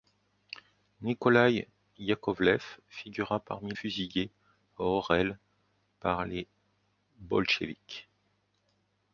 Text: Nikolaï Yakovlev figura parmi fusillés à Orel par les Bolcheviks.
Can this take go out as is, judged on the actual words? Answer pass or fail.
pass